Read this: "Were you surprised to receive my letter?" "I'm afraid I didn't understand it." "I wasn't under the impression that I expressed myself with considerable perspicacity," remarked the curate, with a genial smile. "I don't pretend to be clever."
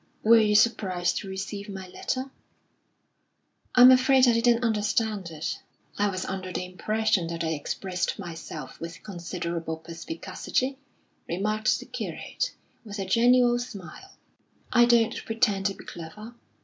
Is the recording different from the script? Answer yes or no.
yes